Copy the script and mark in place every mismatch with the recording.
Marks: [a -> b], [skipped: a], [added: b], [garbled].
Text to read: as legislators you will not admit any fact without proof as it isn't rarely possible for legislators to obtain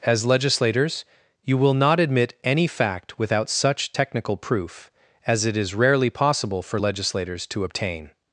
as legislators you will not admit any fact without [added: such technical] proof as it [isn't -> is] rarely possible for legislators to obtain